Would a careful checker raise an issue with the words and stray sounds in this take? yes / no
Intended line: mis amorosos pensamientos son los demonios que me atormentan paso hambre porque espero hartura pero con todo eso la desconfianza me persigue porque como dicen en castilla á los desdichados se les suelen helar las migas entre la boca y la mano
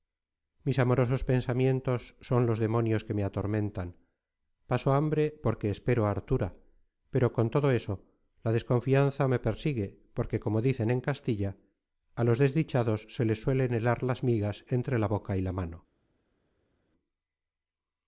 no